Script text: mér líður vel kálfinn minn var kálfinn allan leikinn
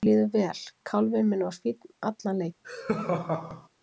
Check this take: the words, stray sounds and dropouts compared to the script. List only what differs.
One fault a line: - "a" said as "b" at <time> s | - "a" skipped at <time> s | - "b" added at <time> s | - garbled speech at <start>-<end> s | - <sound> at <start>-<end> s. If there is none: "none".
- "kálfinn" said as "fínn" at 1.6 s
- laugh at 2.6-3.7 s